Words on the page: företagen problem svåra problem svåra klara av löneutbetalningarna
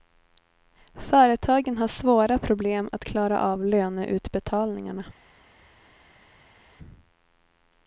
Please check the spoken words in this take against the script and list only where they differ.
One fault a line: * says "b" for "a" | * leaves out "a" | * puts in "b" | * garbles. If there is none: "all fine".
* says "har" for "problem"
* says "att" for "svåra"